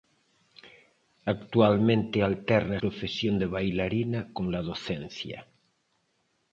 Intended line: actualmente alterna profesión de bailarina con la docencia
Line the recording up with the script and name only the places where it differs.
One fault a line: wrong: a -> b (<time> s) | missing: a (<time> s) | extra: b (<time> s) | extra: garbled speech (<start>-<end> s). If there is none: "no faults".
no faults